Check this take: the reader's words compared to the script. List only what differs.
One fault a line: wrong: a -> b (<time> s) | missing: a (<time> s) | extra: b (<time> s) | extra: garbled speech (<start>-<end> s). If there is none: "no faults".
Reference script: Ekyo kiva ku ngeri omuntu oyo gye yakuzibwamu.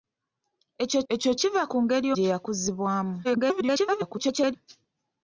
extra: ekyo (1.1 s)
missing: omuntu oyo (2.1 s)
extra: garbled speech (3.2-4.6 s)